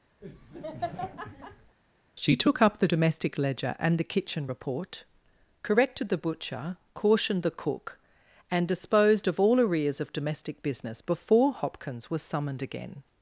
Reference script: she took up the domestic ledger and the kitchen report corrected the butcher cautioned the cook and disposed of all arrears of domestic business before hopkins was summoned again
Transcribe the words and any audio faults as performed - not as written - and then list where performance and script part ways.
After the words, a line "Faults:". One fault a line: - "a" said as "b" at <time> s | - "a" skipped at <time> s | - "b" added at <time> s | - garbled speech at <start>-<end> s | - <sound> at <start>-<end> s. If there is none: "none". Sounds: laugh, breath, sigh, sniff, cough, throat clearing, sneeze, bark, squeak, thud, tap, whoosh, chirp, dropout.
she took up the domestic ledger and the kitchen report corrected the butcher cautioned the cook and disposed of all arrears of domestic business before hopkins was summoned again
Faults:
- laugh at 0.2-1.8 s